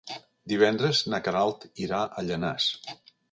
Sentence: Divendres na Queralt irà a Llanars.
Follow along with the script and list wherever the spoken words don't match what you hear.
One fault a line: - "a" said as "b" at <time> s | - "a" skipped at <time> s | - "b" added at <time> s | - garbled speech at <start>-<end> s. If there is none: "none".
none